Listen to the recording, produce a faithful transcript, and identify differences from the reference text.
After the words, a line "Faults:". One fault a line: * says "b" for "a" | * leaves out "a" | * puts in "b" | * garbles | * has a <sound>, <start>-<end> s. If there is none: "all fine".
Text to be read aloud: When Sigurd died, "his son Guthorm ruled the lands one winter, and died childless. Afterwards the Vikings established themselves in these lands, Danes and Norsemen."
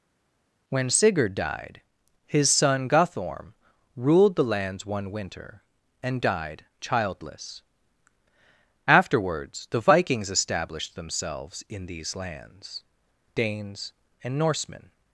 When Sigurd died, "his son Guthorm ruled the lands one winter, and died childless. Afterwards the Vikings established themselves in these lands, Danes and Norsemen."
Faults:
all fine